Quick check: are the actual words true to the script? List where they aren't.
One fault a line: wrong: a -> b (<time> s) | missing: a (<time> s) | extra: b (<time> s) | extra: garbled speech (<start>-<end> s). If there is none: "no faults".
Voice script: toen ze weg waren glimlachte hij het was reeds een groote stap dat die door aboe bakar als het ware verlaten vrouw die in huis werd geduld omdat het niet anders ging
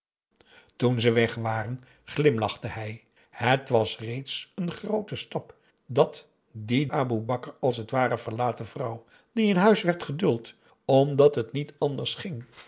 missing: door (6.8 s)